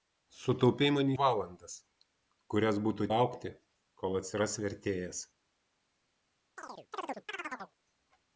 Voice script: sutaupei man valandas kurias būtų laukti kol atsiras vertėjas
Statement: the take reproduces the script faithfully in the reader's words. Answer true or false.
true